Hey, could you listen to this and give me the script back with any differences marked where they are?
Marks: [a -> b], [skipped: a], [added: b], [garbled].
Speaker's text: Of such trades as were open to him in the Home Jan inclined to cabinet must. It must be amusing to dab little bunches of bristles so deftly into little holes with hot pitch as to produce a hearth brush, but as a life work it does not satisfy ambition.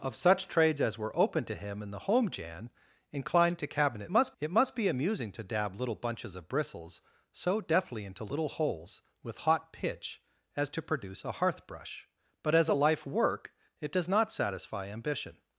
Of such trades as were open to him in the Home Jan inclined to cabinet must. It must be amusing to dab little bunches of bristles so deftly into little holes with hot pitch as to produce a hearth brush, but as a life work it does not satisfy ambition.